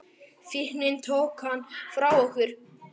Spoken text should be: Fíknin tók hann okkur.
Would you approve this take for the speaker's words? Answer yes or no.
no